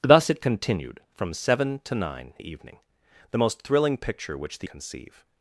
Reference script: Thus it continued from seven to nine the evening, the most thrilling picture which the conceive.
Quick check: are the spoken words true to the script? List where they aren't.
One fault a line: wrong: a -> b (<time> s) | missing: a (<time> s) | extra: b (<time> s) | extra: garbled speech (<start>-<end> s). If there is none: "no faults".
no faults